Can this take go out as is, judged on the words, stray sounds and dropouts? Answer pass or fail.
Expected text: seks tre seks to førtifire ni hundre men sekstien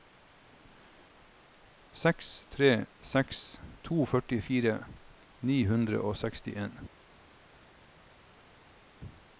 fail